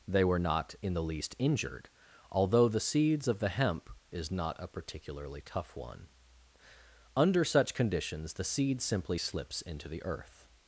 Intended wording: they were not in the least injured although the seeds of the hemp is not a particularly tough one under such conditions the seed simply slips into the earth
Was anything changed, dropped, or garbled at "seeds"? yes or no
no